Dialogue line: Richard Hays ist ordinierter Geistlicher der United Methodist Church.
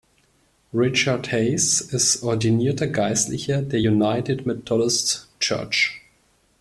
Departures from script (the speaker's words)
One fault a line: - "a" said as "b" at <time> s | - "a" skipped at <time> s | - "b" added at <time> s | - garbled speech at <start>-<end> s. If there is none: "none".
none